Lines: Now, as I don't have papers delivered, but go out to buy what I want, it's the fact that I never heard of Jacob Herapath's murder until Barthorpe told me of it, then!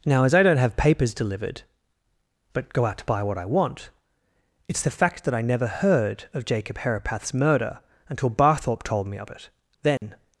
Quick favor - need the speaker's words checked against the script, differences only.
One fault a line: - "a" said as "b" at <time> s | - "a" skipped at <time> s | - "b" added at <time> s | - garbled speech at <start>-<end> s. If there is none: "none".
none